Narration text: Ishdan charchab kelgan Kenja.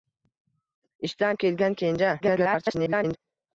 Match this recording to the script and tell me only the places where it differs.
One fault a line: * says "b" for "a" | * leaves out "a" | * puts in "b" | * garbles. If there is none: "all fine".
* leaves out "charchab"
* garbles